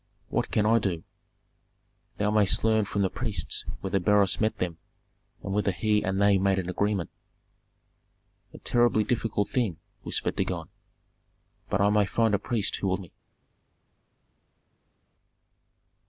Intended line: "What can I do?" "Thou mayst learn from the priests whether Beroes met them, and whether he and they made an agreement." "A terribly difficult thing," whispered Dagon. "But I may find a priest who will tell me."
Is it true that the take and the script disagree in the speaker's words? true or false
true